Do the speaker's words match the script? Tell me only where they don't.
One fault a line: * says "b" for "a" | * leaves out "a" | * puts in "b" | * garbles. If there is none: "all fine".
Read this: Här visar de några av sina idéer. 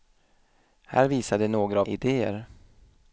* leaves out "sina"